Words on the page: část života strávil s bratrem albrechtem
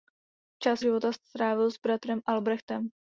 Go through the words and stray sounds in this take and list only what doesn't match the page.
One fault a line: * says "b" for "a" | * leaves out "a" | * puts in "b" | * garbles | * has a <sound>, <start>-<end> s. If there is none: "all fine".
all fine